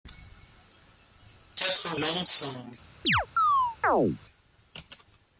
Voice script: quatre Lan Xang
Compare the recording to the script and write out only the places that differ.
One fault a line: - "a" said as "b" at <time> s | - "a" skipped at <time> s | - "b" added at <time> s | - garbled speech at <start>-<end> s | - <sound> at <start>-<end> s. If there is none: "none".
- chirp at 3.0-4.2 s